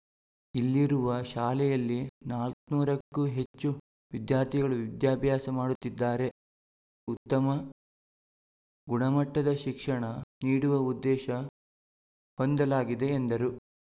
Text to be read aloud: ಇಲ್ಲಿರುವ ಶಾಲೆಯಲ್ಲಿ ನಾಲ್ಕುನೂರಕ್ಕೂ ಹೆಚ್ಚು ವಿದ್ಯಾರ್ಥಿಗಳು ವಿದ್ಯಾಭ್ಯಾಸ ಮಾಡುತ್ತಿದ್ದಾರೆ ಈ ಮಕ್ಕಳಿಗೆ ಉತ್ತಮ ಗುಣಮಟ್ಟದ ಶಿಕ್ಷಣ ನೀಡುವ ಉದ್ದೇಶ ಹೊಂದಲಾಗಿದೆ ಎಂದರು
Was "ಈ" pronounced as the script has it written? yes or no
no